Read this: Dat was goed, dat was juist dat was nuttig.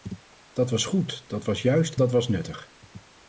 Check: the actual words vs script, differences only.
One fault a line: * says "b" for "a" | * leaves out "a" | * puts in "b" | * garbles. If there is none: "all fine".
all fine